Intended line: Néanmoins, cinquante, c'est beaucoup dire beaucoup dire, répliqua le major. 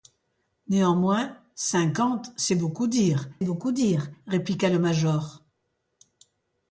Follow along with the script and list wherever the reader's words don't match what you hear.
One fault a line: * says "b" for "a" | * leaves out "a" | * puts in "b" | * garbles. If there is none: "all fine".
all fine